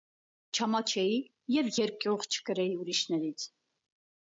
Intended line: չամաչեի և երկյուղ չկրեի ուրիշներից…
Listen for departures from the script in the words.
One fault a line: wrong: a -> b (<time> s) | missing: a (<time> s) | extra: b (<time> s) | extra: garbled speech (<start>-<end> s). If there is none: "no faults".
no faults